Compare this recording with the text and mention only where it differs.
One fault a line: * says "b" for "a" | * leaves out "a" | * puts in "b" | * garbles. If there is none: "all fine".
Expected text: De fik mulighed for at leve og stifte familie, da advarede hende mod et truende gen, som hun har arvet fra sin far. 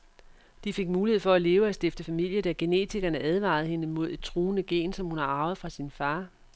* puts in "genetikerne"